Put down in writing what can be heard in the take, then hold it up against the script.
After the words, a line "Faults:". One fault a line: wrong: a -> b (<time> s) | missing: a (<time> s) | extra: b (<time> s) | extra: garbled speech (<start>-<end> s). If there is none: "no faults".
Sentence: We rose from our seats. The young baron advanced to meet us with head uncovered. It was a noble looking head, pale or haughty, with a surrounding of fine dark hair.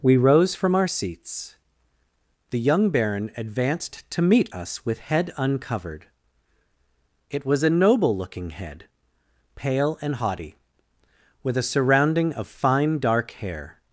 We rose from our seats. The young baron advanced to meet us with head uncovered. It was a noble looking head, pale and haughty, with a surrounding of fine dark hair.
Faults:
wrong: or -> and (10.0 s)